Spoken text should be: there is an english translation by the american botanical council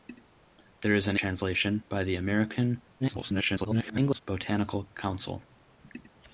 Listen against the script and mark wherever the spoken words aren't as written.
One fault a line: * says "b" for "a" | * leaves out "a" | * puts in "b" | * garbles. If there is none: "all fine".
* leaves out "english"
* garbles